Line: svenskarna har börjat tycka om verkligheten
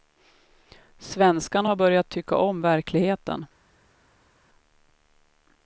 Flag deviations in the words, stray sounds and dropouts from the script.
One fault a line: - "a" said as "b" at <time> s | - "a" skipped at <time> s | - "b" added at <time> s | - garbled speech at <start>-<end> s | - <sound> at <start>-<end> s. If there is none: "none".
none